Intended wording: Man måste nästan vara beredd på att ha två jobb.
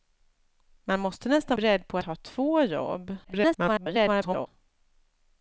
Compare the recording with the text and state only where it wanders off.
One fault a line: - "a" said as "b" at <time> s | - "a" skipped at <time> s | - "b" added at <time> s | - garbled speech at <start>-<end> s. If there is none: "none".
- "vara" skipped at 1.6 s
- "att" skipped at 2.0 s
- garbled speech at 3.2-4.5 s